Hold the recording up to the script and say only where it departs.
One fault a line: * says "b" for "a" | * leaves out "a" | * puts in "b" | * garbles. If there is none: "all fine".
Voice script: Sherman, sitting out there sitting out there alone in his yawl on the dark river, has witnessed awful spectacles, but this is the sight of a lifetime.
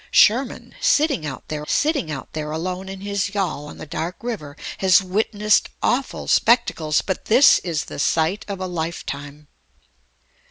all fine